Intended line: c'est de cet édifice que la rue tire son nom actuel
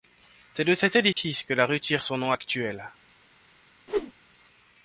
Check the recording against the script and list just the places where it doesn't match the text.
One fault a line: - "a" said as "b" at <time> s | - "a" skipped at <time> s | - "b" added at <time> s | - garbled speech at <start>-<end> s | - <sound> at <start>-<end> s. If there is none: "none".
- dropout at 1.1-1.2 s
- whoosh at 3.9-4.1 s